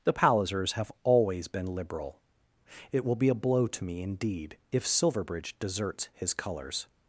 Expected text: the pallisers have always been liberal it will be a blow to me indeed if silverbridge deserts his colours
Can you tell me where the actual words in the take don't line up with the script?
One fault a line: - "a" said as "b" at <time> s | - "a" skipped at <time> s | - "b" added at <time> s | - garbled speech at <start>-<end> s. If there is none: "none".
none